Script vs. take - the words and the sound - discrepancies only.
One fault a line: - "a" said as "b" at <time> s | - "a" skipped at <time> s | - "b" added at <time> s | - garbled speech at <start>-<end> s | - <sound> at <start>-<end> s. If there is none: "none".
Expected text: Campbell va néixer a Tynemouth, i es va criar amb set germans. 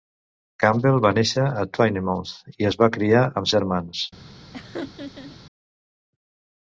- "set" skipped at 3.5 s
- laugh at 4.5-5.4 s